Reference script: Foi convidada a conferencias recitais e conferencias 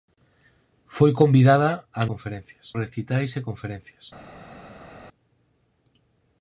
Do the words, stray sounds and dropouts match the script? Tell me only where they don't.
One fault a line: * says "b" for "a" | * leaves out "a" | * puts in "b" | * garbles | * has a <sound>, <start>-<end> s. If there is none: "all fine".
all fine